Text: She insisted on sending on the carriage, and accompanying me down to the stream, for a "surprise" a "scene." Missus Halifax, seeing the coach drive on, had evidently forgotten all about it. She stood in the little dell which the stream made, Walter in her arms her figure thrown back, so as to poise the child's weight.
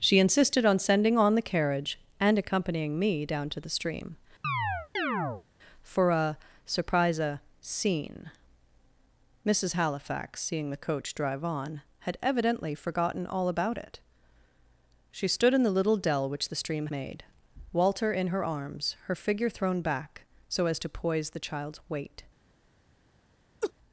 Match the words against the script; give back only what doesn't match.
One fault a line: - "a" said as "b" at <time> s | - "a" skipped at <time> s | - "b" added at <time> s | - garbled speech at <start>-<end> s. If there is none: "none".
none